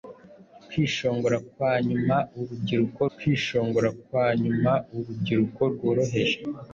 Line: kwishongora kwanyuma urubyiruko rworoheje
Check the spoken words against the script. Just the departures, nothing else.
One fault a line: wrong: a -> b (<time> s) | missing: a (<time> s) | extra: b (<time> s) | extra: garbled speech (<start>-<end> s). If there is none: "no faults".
extra: kwishongora kwanyuma urubyiruko (3.2 s)